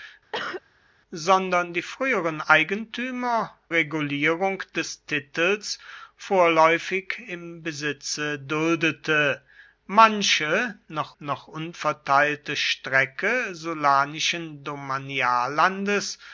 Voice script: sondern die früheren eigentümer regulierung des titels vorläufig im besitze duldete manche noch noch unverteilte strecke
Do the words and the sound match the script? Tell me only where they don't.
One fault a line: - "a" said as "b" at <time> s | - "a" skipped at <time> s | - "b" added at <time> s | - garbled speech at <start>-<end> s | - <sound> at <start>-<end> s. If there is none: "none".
- cough at 0.3-0.6 s